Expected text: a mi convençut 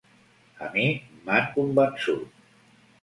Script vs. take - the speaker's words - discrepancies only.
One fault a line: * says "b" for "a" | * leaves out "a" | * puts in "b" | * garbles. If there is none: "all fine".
* puts in "m'han"